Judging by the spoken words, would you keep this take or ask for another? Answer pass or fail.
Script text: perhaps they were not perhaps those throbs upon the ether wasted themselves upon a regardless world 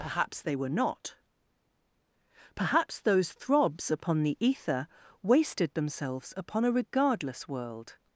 pass